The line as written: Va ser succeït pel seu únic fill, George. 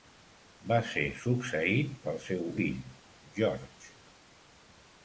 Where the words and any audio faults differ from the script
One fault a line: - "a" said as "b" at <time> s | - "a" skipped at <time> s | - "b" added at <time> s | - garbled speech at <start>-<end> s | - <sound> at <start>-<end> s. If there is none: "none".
- "únic" skipped at 2.5 s